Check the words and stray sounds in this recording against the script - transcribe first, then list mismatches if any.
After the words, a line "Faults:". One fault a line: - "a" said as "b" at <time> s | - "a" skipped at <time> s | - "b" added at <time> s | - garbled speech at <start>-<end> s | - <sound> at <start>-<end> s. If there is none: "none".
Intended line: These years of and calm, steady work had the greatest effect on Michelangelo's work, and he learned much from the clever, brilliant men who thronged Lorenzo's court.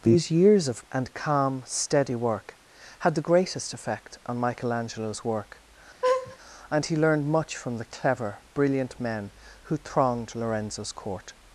These years of and calm, steady work had the greatest effect on Michelangelo's work, and he learned much from the clever, brilliant men who thronged Lorenzo's court.
Faults:
- laugh at 6.0-6.4 s